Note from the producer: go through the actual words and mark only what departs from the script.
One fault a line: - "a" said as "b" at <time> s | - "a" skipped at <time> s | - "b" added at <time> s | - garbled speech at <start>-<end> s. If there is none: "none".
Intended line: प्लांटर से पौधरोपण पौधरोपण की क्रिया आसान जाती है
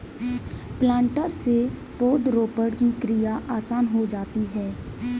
- "पौधरोपण" skipped at 2.7 s
- "हो" added at 3.9 s